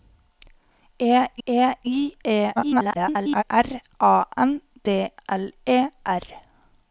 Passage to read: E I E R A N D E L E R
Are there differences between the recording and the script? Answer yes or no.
yes